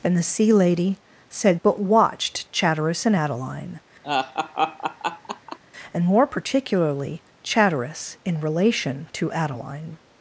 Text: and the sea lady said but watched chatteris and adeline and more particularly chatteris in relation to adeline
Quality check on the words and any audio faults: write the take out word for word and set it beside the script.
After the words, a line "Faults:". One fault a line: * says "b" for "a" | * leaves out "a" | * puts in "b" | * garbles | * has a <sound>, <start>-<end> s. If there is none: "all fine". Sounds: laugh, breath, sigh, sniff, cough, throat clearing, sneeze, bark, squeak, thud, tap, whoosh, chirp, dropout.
and the sea lady said but watched chatteris and adeline and more particularly chatteris in relation to adeline
Faults:
* has a laugh, 4.0-5.6 s